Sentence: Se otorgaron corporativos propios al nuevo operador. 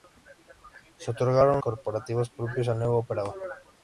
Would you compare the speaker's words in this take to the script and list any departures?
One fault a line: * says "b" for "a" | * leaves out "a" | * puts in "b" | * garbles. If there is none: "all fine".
all fine